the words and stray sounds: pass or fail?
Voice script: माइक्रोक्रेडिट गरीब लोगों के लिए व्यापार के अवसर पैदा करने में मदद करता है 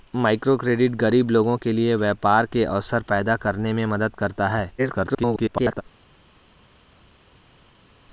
fail